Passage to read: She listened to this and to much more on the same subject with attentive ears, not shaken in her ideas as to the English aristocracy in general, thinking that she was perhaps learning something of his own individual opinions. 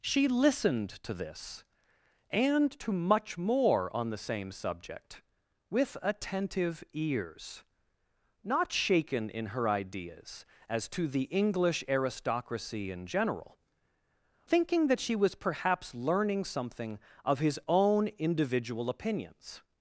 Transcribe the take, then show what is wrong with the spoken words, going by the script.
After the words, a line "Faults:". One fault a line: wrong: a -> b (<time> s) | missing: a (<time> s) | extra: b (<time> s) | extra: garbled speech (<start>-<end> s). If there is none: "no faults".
She listened to this and to much more on the same subject with attentive ears, not shaken in her ideas as to the English aristocracy in general, thinking that she was perhaps learning something of his own individual opinions.
Faults:
no faults